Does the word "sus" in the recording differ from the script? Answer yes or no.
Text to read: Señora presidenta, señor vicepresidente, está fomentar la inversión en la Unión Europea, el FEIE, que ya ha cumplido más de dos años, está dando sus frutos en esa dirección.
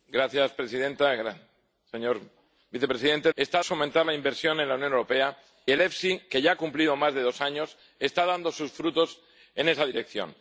no